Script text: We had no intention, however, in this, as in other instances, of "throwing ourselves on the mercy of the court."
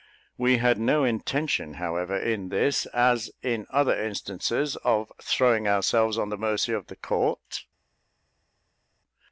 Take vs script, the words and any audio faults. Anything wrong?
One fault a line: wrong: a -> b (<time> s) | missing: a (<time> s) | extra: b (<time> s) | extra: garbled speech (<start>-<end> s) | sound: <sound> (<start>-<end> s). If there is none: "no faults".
no faults